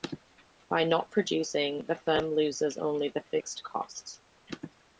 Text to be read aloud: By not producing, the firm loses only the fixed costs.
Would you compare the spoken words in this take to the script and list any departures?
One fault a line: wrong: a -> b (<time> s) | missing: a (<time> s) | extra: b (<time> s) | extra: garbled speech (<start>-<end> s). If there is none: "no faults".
no faults